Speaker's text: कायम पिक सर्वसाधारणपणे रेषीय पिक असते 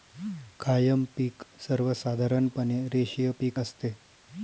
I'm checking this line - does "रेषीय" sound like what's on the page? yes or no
yes